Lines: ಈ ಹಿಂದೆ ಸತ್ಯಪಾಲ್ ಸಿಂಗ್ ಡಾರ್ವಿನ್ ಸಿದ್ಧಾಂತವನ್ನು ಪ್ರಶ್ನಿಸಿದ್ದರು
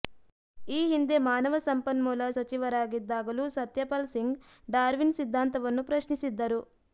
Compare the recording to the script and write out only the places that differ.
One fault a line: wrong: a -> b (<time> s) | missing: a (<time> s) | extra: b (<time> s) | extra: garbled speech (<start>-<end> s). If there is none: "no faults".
extra: ಮಾನವ ಸಂಪನ್ಮೂಲ ಸಚಿವರಾಗಿದ್ದಾಗಲೂ (1.2 s)